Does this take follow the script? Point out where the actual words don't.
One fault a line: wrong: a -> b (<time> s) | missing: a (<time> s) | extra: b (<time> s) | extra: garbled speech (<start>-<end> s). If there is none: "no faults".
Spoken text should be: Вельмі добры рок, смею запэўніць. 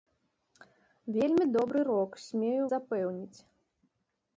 no faults